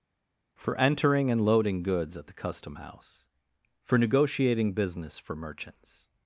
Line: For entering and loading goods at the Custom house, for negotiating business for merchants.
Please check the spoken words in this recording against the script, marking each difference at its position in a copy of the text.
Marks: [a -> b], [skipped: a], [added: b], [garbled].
For entering and loading goods at the Custom house, for negotiating business for merchants.